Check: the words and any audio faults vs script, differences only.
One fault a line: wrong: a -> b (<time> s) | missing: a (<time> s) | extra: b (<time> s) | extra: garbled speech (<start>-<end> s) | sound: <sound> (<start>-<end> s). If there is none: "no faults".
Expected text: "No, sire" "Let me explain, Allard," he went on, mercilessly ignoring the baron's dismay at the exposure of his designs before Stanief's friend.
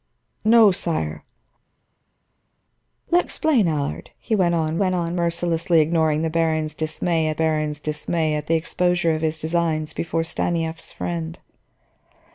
missing: me (3.3 s)
extra: went on (4.8 s)
extra: baron's dismay at (7.3 s)